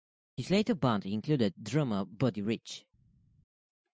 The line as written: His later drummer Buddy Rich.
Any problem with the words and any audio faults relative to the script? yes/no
yes